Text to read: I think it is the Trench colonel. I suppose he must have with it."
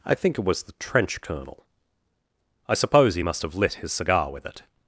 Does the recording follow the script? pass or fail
fail